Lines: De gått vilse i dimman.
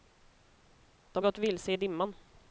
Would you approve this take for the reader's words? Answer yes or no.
yes